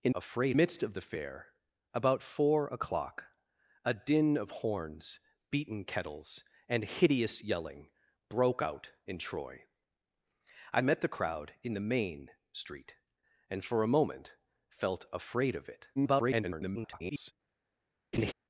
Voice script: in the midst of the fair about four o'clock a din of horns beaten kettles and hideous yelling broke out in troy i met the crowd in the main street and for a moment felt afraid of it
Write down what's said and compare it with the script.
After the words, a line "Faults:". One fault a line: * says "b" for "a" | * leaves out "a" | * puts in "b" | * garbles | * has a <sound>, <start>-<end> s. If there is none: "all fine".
in afraid midst of the fair about four o'clock a din of horns beaten kettles and hideous yelling broke out in troy i met the crowd in the main street and for a moment felt afraid of it [garbled]
Faults:
* says "afraid" for "the"
* garbles
* has a laugh, 18.1-18.3 s